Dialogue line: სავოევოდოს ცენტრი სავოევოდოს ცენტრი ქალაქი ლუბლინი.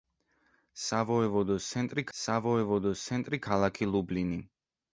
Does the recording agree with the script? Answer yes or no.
yes